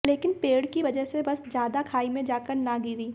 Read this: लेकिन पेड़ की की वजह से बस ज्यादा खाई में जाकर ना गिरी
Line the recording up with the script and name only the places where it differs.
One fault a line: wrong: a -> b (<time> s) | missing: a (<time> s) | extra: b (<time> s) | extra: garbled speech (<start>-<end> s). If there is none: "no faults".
missing: की (0.8 s)